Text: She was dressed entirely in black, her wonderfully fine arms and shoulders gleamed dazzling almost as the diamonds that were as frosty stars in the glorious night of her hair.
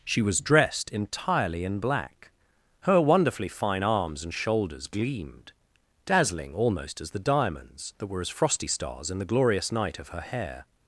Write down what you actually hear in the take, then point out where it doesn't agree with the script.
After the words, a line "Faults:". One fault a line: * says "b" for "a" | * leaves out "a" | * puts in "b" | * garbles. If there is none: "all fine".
She was dressed entirely in black, her wonderfully fine arms and shoulders gleamed dazzling almost as the diamonds that were as frosty stars in the glorious night of her hair.
Faults:
all fine